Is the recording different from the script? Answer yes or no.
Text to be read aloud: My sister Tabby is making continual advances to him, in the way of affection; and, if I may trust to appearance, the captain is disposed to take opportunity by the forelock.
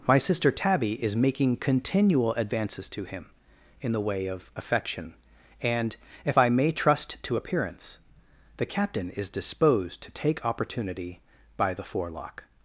no